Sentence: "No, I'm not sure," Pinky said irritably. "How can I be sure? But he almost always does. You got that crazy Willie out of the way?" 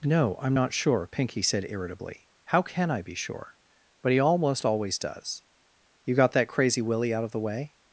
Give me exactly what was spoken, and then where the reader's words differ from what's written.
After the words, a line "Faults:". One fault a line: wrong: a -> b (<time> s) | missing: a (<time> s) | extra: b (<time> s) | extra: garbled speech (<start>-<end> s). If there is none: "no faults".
"No, I'm not sure," Pinky said irritably. "How can I be sure? But he almost always does. You got that crazy Willie out of the way?"
Faults:
no faults